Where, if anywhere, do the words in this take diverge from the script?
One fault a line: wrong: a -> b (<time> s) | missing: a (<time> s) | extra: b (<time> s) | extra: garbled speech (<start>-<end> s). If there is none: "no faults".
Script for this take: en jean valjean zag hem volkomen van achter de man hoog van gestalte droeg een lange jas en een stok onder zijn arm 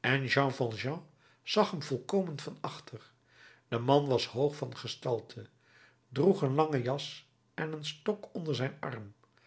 extra: was (4.1 s)